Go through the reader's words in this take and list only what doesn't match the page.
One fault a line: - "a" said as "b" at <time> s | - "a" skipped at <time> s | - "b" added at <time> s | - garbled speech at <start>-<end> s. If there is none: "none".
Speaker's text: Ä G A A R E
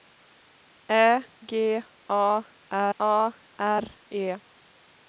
none